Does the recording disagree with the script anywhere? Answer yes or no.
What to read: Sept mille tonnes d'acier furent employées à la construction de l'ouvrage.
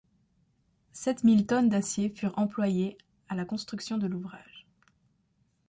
no